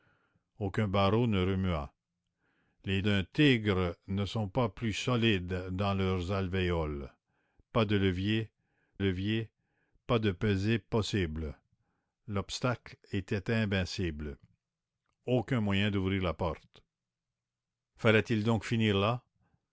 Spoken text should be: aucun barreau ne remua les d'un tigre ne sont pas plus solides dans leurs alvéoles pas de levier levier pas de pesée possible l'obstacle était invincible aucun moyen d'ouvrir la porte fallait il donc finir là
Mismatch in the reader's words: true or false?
false